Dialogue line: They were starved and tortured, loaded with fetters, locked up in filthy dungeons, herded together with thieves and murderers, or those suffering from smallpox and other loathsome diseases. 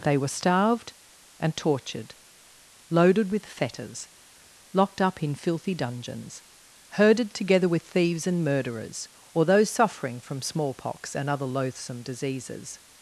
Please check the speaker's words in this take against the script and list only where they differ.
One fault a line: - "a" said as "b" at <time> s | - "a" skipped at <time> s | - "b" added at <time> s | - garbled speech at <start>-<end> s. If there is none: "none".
none